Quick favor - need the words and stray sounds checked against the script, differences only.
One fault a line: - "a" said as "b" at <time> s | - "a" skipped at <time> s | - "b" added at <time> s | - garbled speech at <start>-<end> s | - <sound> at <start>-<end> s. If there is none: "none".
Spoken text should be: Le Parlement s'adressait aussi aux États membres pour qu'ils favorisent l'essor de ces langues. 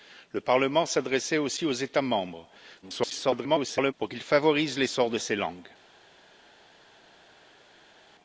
- garbled speech at 2.8-3.9 s